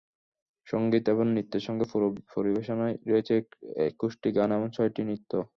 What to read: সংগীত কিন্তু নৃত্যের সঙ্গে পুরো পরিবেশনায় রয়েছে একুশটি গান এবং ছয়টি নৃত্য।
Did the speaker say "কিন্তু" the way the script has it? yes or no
no